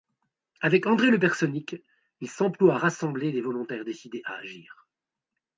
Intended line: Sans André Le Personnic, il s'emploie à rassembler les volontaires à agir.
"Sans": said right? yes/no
no